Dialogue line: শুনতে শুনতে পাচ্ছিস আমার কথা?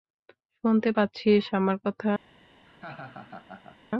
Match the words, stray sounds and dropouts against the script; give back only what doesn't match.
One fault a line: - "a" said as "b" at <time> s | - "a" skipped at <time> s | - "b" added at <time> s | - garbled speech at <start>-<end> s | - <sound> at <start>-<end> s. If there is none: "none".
- "শুনতে" skipped at 0.9 s
- laugh at 2.7-3.8 s